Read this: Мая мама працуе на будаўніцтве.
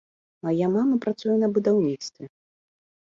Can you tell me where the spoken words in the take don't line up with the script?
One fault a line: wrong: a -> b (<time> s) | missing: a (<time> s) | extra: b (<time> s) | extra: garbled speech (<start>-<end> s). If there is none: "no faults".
no faults